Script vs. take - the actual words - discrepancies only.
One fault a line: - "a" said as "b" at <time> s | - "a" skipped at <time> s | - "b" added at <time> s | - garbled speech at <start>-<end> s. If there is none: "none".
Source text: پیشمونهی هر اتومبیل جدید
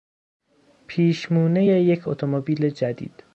- "هر" said as "یک" at 1.6 s